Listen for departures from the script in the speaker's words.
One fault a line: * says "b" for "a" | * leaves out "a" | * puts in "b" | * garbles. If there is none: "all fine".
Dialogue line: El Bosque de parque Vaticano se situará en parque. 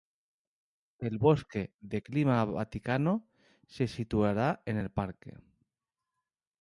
* says "clima" for "parque"
* puts in "el"